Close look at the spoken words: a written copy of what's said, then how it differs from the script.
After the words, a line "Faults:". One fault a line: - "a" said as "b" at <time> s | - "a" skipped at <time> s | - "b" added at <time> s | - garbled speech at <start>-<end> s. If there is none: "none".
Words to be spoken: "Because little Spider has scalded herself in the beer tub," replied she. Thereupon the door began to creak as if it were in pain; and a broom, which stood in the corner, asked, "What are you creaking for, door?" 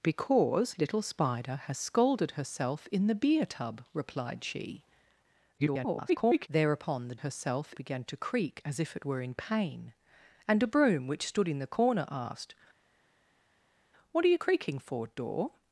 "Because little Spider has scalded herself in the beer tub," replied she. [garbled] Thereupon the herself began to creak as if it were in pain; and a broom, which stood in the corner, asked, "What are you creaking for, door?"
Faults:
- garbled speech at 5.6-6.5 s
- "door" said as "herself" at 7.2 s